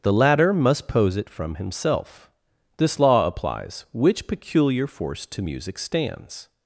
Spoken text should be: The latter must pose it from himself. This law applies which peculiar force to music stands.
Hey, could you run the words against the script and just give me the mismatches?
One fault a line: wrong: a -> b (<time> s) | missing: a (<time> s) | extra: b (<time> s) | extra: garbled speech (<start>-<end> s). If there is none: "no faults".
no faults